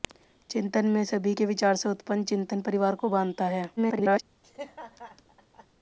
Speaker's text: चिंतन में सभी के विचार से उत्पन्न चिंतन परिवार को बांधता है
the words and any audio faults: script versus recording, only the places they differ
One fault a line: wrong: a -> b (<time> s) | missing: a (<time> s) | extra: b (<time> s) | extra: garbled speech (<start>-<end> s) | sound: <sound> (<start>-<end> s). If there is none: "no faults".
extra: garbled speech (3.8-4.2 s)
sound: laugh (4.4-5.7 s)